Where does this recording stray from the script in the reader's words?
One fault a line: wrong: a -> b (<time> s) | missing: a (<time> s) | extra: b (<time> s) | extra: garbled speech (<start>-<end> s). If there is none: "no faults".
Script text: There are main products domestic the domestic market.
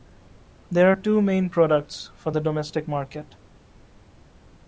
extra: two (0.9 s)
wrong: domestic -> for (2.1 s)